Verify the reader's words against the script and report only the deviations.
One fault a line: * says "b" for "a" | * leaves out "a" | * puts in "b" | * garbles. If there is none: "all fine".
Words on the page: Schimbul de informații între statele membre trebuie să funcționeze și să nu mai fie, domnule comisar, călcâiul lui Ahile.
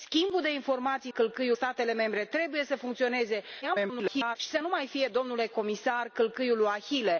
* says "călcâiul" for "între"
* garbles